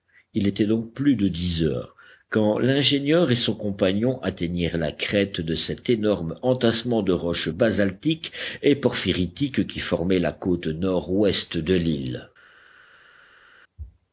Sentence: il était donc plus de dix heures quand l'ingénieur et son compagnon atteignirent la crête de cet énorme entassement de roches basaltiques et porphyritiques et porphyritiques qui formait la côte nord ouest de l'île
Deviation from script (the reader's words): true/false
true